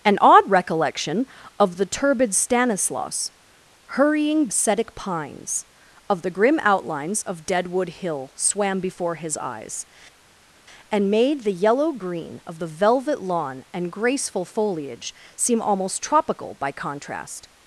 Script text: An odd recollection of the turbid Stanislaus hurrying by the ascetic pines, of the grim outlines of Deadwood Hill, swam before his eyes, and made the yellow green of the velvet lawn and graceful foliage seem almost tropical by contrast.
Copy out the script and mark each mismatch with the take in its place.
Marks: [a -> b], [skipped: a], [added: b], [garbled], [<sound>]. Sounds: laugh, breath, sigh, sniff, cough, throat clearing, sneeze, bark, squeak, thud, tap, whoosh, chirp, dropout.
An odd recollection of the turbid Stanislaus hurrying [skipped: by the] ascetic pines, of the grim outlines of Deadwood Hill, swam before his eyes, and made the yellow green of the velvet lawn and graceful foliage seem almost tropical by contrast.